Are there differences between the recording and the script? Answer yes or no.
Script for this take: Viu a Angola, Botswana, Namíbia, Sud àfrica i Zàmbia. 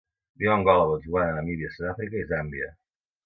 no